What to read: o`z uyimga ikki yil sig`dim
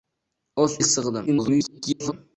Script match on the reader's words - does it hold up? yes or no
no